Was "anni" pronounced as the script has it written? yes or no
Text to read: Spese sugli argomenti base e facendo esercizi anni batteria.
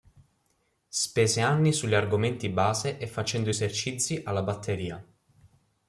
no